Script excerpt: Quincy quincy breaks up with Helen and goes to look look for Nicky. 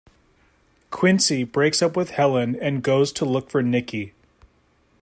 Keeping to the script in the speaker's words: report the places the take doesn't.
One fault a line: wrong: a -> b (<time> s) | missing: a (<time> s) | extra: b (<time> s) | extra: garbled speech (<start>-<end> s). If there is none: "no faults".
missing: quincy (1.4 s)
missing: look (3.5 s)